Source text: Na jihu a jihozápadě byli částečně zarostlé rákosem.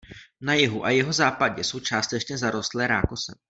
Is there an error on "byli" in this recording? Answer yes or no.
yes